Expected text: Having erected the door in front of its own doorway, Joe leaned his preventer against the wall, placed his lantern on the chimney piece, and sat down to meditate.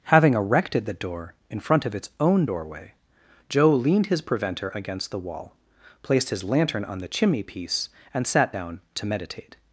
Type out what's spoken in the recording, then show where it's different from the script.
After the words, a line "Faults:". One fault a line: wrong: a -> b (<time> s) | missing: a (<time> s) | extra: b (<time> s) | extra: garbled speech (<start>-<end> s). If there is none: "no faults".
Having erected the door in front of its own doorway, Joe leaned his preventer against the wall, placed his lantern on the chimney piece, and sat down to meditate.
Faults:
no faults